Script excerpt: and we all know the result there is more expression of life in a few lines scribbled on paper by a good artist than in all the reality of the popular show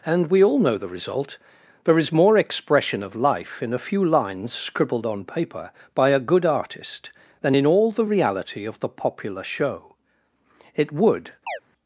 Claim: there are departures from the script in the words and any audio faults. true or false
true